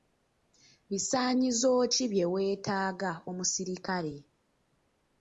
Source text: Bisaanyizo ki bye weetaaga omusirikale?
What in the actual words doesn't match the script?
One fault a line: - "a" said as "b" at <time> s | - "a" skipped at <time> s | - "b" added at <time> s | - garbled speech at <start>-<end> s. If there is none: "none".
none